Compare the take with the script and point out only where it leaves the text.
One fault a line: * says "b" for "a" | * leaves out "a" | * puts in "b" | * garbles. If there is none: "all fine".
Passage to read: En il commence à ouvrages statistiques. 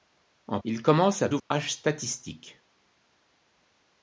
all fine